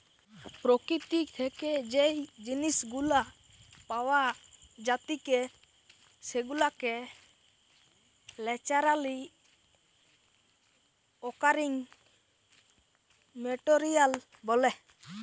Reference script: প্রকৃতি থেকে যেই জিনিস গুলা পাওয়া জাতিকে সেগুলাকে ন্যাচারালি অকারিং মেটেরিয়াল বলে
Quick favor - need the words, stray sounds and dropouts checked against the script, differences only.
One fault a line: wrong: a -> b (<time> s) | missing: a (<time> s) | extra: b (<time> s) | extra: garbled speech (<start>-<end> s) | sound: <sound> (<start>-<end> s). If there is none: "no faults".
no faults